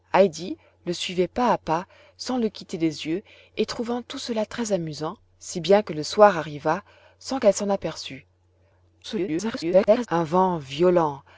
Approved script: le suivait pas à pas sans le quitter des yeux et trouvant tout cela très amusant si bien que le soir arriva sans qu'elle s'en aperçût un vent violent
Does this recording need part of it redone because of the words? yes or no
yes